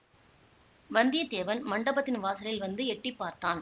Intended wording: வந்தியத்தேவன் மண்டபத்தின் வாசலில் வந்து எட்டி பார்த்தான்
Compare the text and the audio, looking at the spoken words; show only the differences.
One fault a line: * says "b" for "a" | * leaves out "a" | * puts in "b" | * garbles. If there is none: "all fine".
all fine